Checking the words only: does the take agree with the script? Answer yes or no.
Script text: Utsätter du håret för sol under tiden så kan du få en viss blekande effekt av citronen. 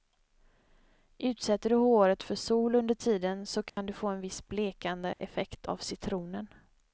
yes